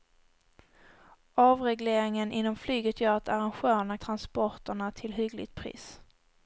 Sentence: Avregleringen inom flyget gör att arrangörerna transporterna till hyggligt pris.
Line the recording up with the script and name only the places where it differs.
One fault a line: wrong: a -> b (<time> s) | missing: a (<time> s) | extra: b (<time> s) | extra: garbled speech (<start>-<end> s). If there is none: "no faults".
no faults